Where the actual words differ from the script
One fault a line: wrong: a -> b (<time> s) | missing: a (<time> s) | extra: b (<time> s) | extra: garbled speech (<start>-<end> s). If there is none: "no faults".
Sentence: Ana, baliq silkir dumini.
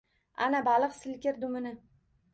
no faults